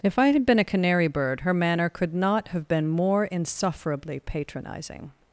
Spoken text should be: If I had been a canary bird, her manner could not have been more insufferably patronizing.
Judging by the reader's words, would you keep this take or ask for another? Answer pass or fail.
pass